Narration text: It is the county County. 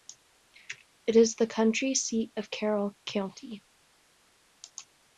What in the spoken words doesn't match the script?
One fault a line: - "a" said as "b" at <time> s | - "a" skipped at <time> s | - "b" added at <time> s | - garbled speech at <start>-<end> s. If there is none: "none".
- "seat of Carroll" added at 1.9 s